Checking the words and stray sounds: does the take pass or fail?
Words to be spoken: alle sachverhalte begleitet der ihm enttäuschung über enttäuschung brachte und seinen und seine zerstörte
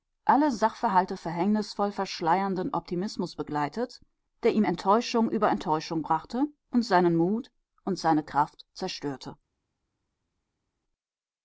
fail